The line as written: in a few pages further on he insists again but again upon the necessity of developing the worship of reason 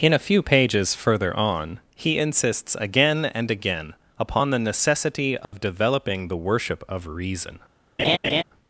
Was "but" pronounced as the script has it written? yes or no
no